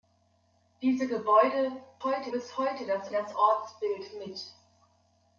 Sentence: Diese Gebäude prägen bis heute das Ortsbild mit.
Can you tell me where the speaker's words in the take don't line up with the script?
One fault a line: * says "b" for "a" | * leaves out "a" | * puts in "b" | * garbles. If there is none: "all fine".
* says "heute" for "prägen"
* puts in "das"